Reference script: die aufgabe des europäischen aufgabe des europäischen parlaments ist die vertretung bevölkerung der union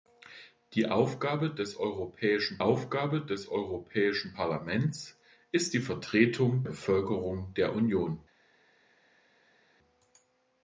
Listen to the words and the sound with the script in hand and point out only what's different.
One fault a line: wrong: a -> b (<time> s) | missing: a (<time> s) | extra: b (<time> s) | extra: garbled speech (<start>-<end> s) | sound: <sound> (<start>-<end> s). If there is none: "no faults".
no faults